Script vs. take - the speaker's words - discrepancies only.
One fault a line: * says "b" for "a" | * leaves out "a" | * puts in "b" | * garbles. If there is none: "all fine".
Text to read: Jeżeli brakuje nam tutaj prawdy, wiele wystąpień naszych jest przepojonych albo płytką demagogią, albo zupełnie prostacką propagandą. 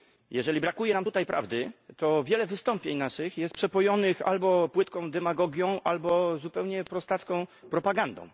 * puts in "to"